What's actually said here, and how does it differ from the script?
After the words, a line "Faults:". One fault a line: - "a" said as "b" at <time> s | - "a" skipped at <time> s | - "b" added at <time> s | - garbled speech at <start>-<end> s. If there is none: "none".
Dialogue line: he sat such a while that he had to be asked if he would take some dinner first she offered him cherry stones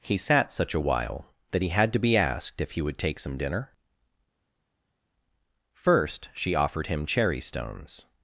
he sat such a while that he had to be asked if he would take some dinner first she offered him cherry stones
Faults:
none